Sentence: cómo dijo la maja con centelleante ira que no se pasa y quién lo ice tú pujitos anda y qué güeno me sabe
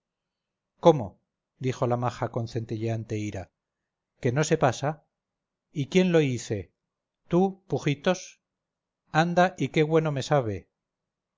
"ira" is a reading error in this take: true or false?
false